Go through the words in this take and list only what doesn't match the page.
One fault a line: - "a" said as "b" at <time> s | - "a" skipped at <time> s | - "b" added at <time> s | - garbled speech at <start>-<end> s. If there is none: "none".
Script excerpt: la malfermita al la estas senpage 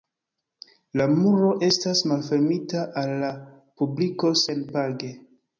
- "muro estas" added at 1.2 s
- "estas" said as "publiko" at 3.8 s